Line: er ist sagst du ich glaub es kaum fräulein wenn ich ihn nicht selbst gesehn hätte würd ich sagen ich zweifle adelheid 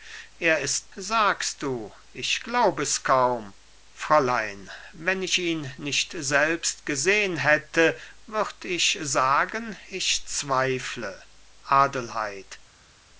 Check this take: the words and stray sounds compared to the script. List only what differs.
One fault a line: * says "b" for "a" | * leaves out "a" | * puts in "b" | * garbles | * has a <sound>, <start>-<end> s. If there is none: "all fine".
all fine